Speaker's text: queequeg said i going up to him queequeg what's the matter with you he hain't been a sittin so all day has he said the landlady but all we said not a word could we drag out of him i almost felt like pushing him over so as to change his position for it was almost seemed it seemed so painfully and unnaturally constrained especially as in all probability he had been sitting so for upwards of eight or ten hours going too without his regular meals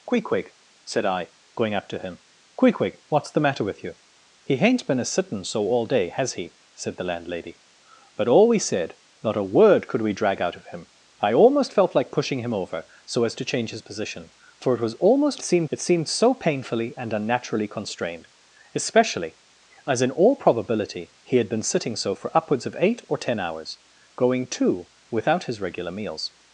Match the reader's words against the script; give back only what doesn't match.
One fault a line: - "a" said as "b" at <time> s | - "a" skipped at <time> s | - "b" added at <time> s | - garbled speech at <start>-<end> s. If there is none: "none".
none